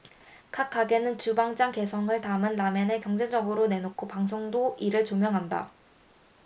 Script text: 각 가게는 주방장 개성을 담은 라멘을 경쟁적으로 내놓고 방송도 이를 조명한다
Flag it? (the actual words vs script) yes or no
no